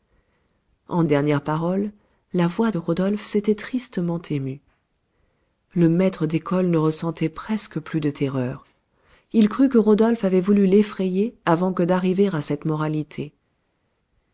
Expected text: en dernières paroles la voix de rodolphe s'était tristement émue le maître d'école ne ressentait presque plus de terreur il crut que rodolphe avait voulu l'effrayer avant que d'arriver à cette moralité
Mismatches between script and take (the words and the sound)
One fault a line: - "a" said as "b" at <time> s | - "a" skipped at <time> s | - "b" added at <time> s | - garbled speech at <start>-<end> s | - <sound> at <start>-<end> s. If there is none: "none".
none